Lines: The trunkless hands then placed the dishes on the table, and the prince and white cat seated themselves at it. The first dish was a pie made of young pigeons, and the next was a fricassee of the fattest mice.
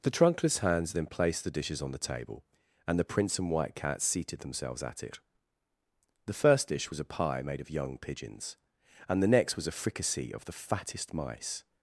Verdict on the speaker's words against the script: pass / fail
pass